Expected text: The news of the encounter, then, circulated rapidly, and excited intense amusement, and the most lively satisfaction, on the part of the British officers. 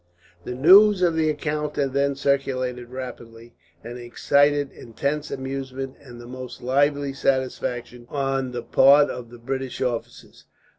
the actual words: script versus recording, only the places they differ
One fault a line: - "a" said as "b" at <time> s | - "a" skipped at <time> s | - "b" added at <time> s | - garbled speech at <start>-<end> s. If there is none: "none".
none